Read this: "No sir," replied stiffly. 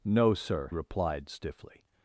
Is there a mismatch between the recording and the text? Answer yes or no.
no